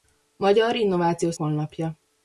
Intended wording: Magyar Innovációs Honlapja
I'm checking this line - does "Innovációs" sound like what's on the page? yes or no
yes